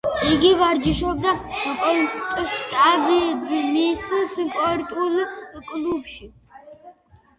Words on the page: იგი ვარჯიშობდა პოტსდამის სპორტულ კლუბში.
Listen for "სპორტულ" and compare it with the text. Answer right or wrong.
right